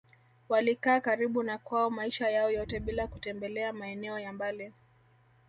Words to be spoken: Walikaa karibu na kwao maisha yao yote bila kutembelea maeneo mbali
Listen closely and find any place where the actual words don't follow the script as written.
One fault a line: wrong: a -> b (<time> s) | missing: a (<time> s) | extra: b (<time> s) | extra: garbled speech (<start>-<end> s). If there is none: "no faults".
extra: ya (4.2 s)